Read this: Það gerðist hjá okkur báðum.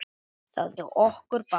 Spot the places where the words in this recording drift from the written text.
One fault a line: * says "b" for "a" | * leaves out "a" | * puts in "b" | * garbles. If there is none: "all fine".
* leaves out "gerðist"